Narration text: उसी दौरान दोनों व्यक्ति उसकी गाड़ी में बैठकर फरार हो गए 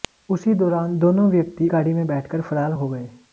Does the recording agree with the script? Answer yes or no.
no